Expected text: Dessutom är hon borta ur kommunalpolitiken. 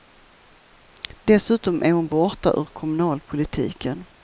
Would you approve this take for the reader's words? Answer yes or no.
yes